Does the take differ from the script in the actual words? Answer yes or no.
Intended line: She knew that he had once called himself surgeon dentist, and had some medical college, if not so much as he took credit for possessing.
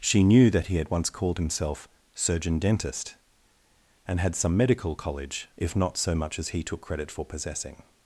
no